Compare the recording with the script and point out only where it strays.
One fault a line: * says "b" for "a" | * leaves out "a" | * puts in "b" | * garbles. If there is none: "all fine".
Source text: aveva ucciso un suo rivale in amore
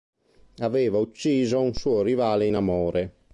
all fine